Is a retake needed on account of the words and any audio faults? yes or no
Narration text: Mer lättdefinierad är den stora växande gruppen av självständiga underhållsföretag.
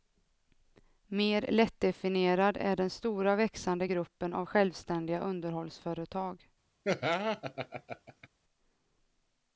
yes